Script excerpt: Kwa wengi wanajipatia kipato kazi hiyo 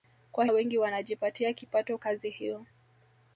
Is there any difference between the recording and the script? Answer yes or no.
no